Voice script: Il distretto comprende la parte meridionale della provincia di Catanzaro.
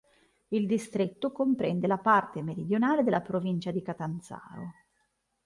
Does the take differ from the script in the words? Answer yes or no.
no